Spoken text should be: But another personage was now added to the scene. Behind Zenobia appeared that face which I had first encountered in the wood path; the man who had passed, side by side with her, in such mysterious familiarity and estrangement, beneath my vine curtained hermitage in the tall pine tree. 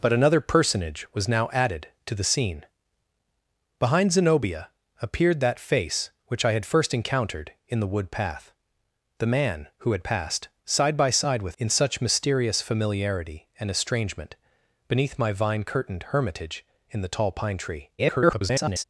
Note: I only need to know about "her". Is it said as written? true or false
false